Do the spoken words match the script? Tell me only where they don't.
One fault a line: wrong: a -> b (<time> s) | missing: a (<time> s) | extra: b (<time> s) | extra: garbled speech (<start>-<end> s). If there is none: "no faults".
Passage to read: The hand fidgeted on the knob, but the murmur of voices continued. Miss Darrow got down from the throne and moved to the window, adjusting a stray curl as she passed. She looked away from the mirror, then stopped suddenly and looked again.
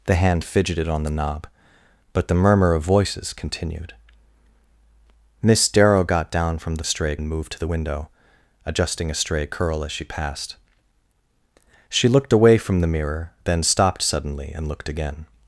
wrong: throne -> stray (6.8 s)